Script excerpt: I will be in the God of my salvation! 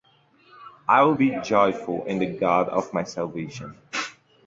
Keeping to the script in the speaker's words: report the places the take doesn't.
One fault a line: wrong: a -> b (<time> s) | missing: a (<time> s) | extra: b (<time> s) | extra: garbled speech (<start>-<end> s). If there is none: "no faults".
extra: joyful (1.4 s)